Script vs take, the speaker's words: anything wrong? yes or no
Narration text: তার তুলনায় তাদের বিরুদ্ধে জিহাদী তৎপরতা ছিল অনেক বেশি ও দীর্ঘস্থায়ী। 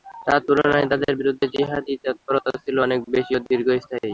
no